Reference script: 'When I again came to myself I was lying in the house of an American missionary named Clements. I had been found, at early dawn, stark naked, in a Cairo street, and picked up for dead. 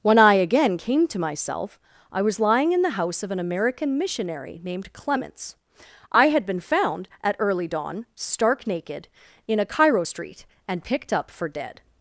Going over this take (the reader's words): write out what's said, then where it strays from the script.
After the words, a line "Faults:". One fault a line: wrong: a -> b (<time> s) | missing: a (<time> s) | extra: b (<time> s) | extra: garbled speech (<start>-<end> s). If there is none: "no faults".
'When I again came to myself I was lying in the house of an American missionary named Clements. I had been found, at early dawn, stark naked, in a Cairo street, and picked up for dead.
Faults:
no faults